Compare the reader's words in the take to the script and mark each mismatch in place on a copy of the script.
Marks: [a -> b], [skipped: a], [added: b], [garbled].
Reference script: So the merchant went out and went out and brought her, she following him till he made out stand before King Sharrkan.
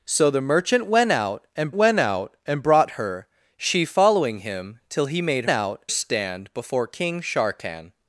So the merchant went out and went out and brought her, she following him till he made out stand before King Sharrkan.